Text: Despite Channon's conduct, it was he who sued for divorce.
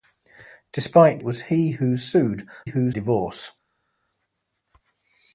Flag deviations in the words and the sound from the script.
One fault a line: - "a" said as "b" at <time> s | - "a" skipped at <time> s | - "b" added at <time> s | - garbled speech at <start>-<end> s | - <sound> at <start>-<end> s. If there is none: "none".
- "Channon's conduct it" skipped at 1.2 s
- "for" said as "who" at 2.6 s